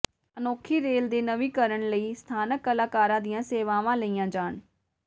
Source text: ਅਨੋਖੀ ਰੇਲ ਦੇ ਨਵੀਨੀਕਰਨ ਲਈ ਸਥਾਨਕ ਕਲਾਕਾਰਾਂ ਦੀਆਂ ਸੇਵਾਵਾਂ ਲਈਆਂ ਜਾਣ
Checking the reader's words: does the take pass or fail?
pass